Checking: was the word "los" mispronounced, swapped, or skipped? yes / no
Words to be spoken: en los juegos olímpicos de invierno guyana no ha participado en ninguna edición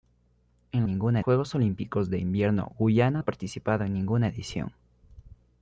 yes